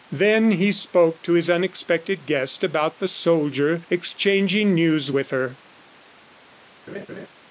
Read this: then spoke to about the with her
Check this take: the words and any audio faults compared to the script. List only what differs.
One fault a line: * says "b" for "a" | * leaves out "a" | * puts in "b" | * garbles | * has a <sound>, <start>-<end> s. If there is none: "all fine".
* puts in "he"
* puts in "his unexpected guest"
* puts in "soldier exchanging news"
* has a laugh, 6.9-7.3 s